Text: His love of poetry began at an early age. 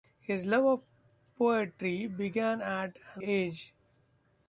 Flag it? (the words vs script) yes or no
yes